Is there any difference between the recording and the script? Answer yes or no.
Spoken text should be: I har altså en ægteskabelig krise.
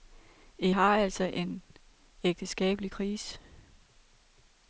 no